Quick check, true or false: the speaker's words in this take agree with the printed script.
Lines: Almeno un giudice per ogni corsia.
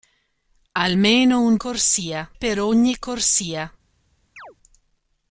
false